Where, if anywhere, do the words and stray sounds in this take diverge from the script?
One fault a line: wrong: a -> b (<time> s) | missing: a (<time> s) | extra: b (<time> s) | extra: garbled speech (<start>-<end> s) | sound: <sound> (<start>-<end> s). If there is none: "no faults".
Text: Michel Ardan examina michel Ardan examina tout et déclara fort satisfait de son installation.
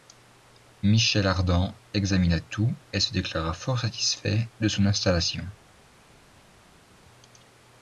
missing: michel Ardan examina (2.4 s)
extra: se (3.0 s)